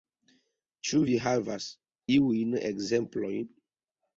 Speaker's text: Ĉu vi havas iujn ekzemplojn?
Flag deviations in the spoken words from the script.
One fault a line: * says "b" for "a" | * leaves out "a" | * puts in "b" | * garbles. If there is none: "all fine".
all fine